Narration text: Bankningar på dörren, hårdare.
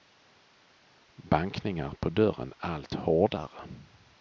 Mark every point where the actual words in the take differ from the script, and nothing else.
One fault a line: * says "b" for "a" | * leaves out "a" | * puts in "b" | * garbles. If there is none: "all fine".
* puts in "allt"